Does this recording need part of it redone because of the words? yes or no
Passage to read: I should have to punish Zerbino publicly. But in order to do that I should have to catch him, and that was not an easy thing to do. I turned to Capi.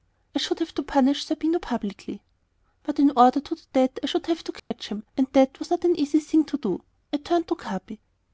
no